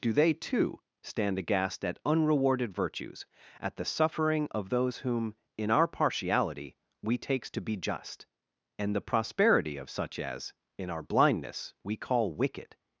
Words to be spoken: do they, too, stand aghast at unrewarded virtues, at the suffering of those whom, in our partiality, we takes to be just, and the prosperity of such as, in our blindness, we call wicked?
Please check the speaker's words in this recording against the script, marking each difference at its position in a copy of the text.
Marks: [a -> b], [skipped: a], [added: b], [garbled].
do they, too, stand aghast at unrewarded virtues, at the suffering of those whom, in our partiality, we takes to be just, and the prosperity of such as, in our blindness, we call wicked?